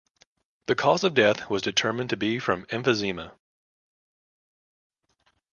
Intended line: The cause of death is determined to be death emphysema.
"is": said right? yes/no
no